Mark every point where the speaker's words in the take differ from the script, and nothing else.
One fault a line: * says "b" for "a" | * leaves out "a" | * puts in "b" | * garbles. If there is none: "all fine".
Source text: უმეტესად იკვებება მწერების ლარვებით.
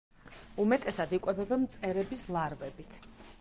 all fine